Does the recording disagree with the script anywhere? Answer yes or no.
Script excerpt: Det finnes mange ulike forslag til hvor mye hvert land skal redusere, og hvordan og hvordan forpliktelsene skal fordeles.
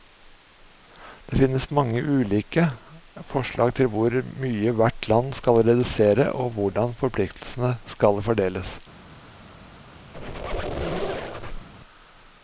yes